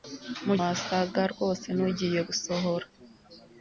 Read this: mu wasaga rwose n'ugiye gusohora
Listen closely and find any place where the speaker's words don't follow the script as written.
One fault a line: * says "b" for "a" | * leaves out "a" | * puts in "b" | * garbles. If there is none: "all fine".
all fine